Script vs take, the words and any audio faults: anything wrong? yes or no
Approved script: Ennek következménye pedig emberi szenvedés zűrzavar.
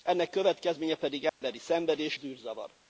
yes